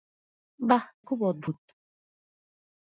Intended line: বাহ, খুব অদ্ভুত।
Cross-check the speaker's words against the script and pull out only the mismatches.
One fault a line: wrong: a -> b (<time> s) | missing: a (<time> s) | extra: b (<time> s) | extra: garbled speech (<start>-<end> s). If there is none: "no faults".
no faults